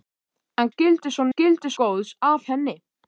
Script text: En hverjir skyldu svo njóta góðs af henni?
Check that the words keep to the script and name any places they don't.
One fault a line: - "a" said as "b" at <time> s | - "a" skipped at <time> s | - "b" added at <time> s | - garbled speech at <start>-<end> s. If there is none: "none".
- "hverjir" skipped at 0.7 s
- "njóta" said as "skyldu" at 1.3 s